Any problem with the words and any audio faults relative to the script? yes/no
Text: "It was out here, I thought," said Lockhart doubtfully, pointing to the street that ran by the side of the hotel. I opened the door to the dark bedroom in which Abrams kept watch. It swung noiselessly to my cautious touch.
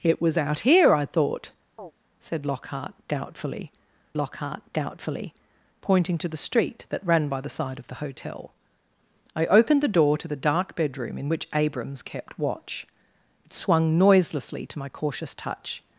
yes